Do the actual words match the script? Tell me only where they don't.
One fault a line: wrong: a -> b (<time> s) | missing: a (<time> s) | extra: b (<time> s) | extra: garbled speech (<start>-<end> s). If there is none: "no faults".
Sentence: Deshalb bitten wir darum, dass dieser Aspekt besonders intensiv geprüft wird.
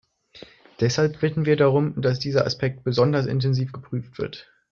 no faults